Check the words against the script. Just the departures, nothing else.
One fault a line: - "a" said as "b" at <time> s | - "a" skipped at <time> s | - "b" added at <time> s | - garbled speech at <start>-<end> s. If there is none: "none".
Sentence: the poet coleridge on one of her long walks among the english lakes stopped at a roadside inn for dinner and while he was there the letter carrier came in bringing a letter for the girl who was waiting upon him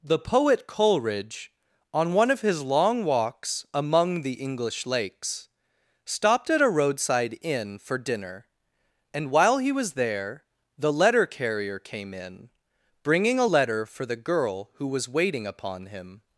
- "her" said as "his" at 2.4 s